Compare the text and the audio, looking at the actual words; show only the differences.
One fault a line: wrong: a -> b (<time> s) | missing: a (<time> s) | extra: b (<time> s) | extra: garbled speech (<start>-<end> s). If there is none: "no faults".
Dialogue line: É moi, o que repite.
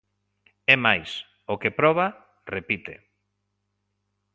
wrong: moi -> máis (0.8 s)
extra: proba (1.8 s)